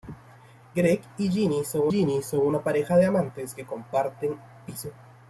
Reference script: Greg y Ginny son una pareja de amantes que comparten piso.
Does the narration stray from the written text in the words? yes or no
yes